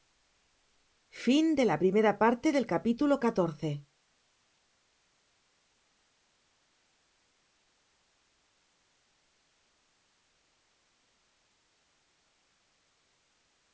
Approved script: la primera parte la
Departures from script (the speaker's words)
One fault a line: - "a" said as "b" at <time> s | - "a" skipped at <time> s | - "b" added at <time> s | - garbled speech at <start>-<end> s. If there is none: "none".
none